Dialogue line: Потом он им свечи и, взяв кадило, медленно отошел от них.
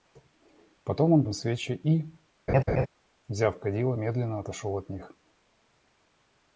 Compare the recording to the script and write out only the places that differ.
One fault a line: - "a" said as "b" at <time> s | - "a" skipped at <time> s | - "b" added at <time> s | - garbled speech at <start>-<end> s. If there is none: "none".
none